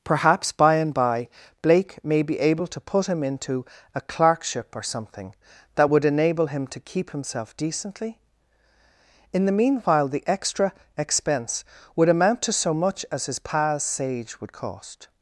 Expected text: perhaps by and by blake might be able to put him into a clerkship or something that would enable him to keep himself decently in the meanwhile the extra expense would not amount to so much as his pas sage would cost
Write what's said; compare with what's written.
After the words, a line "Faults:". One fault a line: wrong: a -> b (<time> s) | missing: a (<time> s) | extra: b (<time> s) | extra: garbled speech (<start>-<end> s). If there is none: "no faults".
perhaps by and by blake may be able to put him into a clerkship or something that would enable him to keep himself decently in the meanwhile the extra expense would amount to so much as his pas sage would cost
Faults:
wrong: might -> may (2.0 s)
missing: not (12.1 s)